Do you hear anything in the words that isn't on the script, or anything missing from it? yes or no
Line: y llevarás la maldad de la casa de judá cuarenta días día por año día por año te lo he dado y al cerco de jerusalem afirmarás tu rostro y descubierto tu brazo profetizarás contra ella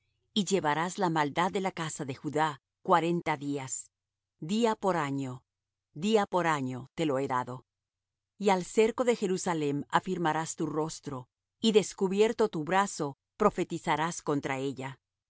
no